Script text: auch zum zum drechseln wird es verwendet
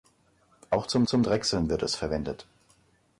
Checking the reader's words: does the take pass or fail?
pass